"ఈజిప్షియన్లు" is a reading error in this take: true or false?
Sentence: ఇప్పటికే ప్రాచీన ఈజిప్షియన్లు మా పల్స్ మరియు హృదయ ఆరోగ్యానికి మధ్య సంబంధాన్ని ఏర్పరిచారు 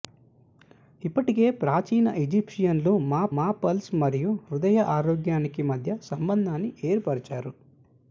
false